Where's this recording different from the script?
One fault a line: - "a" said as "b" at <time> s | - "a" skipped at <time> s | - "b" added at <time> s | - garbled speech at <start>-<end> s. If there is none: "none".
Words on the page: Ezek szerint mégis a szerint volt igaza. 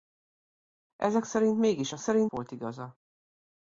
none